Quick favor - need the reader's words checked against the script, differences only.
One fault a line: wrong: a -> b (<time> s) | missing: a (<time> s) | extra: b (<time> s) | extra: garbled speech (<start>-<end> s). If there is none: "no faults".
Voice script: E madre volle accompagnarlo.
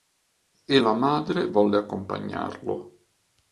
extra: la (0.7 s)